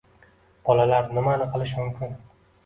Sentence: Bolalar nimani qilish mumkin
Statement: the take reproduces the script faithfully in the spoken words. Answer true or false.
true